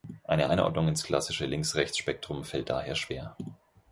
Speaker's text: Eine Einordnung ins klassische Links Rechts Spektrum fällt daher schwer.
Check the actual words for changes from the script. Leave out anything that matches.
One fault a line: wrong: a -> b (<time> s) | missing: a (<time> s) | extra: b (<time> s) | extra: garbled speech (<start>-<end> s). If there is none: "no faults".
no faults